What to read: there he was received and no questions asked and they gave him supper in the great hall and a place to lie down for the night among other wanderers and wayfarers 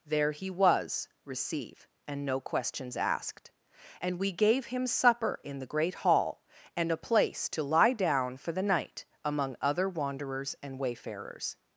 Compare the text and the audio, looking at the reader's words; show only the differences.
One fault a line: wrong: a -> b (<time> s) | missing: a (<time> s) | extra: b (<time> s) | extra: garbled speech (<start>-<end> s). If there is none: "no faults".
wrong: received -> receive (1.2 s)
wrong: they -> we (4.2 s)